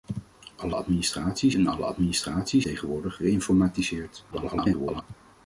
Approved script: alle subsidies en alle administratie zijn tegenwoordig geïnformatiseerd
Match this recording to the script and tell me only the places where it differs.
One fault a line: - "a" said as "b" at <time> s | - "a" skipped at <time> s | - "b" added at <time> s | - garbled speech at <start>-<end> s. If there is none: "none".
- "subsidies" said as "administratie" at 0.7 s
- "zijn" skipped at 2.6 s
- garbled speech at 4.3-5.0 s